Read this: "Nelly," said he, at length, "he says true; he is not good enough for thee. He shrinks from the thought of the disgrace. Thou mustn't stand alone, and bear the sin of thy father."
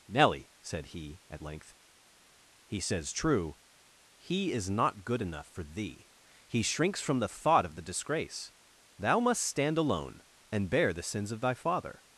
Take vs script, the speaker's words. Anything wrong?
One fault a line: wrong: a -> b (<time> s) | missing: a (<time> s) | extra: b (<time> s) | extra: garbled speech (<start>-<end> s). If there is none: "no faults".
wrong: mustn't -> must (9.2 s)
wrong: sin -> sins (11.0 s)